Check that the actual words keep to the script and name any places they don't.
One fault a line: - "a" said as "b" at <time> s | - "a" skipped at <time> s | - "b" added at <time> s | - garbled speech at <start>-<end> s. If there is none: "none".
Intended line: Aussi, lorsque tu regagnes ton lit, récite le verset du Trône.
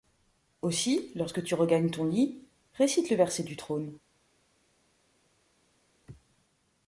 none